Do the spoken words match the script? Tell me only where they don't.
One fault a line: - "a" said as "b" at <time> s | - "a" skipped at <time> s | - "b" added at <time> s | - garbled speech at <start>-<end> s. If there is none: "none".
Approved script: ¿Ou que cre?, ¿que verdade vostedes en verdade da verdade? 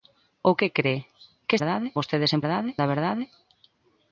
none